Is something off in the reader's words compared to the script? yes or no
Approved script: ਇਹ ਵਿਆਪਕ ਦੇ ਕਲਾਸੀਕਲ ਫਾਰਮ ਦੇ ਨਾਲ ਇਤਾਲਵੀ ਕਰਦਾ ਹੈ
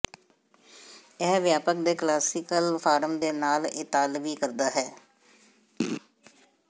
no